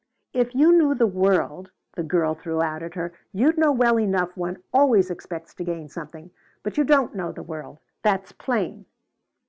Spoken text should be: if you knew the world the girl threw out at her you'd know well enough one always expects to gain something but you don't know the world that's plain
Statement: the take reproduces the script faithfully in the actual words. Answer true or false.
true